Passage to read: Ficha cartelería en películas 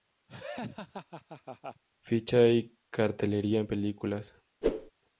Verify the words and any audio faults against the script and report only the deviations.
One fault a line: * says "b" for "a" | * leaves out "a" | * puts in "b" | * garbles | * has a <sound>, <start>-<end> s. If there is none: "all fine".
* has a laugh, 0.3-1.8 s
* puts in "y"
* has a whoosh, 4.6-4.9 s